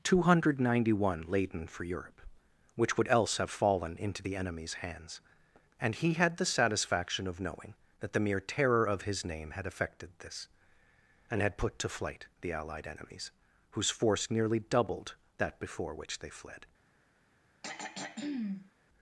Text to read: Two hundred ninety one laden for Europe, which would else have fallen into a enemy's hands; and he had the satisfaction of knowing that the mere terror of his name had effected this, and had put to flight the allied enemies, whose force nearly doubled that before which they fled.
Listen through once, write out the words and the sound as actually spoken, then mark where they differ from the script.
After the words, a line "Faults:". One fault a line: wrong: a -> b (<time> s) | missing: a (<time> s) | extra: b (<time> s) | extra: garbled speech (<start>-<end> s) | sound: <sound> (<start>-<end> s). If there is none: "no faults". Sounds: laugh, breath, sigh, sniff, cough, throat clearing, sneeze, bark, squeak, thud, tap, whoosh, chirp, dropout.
Two hundred ninety one laden for Europe, which would else have fallen into the enemy's hands; and he had the satisfaction of knowing that the mere terror of his name had effected this, and had put to flight the allied enemies, whose force nearly doubled that before which they fled.
Faults:
wrong: a -> the (4.2 s)
sound: throat clearing (17.6-18.7 s)